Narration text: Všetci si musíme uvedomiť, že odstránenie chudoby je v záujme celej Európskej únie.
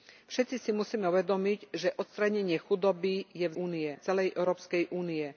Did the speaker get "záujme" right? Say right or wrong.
wrong